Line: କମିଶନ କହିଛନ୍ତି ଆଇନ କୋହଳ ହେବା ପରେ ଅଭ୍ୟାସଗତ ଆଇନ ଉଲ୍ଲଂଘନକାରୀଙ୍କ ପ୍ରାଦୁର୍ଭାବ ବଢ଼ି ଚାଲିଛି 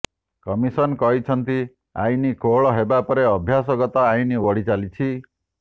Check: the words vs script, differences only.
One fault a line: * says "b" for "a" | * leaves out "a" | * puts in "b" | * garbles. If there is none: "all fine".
* leaves out "ଉଲ୍ଲଂଘନକାରୀଙ୍କ ପ୍ରାଦୁର୍ଭାବ"